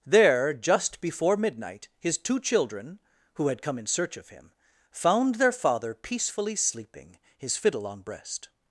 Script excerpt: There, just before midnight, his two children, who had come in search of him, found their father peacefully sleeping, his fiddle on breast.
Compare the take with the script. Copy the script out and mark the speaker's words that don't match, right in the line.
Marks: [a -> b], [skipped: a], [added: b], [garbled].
There, just before midnight, his two children, who had come in search of him, found their father peacefully sleeping, his fiddle on breast.